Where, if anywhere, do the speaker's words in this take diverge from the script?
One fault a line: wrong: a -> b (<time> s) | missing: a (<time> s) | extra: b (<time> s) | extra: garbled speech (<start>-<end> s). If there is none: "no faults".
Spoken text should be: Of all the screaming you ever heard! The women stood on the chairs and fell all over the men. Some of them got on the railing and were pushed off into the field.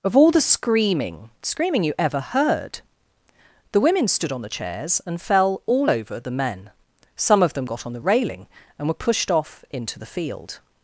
extra: screaming (1.4 s)